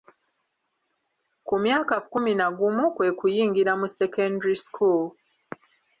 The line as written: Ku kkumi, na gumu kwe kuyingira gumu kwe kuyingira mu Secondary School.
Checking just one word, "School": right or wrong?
right